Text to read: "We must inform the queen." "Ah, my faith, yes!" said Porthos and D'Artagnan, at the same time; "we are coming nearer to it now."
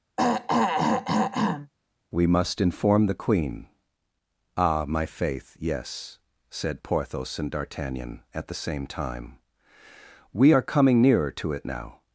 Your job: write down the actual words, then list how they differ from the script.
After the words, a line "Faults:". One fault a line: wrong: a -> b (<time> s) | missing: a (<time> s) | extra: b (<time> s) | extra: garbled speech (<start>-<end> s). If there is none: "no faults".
"We must inform the queen." "Ah, my faith, yes!" said Porthos and D'Artagnan, at the same time; "we are coming nearer to it now."
Faults:
no faults